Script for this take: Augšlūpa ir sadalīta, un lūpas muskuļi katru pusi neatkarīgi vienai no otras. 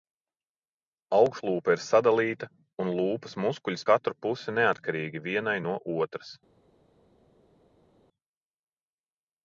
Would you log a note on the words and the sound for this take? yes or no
no